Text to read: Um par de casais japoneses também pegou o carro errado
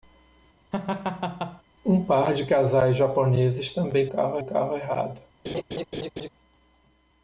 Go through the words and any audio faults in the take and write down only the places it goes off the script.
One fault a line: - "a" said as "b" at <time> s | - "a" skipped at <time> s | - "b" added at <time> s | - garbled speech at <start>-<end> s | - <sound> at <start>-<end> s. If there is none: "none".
- laugh at 0.7-1.6 s
- "pegou" said as "carro" at 4.1 s
- laugh at 5.4-6.3 s